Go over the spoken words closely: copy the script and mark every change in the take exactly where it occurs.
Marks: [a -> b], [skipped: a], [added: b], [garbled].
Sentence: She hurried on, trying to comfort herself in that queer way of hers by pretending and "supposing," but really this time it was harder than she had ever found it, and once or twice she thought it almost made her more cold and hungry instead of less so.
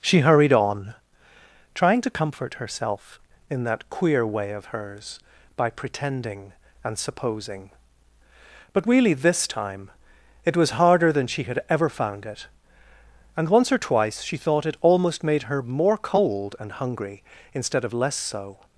She hurried on, trying to comfort herself in that queer way of hers by pretending and "supposing," but really this time it was harder than she had ever found it, and once or twice she thought it almost made her more cold and hungry instead of less so.